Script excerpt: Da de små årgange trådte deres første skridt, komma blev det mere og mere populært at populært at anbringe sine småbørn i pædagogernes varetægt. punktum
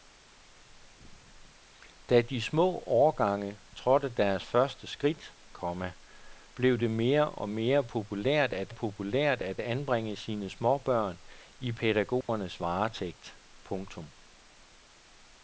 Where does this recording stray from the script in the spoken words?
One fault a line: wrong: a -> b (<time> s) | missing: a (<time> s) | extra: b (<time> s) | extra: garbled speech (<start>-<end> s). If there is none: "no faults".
no faults